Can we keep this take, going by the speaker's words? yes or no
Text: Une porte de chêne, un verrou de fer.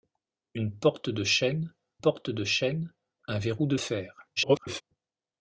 no